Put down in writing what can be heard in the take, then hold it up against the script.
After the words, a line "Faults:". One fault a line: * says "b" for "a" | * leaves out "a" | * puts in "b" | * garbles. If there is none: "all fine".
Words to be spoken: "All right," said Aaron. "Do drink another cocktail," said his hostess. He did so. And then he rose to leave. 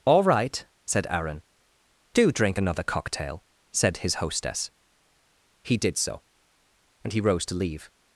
"All right," said Aaron. "Do drink another cocktail," said his hostess. He did so. And he rose to leave.
Faults:
* leaves out "then"